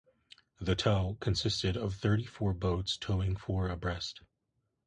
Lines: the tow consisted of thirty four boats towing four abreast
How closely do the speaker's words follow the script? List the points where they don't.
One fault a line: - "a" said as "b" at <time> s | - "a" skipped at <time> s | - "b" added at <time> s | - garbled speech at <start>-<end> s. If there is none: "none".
none